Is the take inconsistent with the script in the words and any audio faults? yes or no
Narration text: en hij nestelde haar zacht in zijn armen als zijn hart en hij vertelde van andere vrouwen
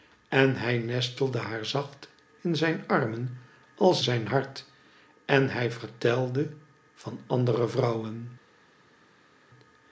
no